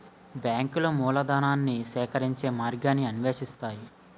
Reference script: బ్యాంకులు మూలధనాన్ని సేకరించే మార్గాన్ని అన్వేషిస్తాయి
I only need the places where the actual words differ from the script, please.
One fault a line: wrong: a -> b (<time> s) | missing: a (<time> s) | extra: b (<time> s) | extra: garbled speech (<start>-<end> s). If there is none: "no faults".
no faults